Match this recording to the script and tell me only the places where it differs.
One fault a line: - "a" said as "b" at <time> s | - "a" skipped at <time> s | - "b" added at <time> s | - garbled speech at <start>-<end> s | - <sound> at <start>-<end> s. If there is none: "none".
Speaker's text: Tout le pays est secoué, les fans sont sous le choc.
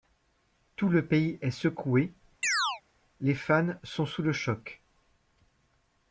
- chirp at 2.4-2.8 s